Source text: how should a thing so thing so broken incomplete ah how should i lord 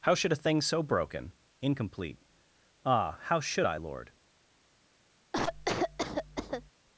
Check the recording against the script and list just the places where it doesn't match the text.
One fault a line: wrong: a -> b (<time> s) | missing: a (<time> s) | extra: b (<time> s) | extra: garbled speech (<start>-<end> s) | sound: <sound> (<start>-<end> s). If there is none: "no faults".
missing: thing so (0.8 s)
sound: cough (5.3-6.7 s)